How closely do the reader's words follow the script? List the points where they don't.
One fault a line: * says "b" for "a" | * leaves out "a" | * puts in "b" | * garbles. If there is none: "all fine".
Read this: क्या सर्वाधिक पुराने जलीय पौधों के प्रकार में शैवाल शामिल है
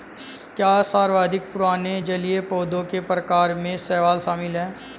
all fine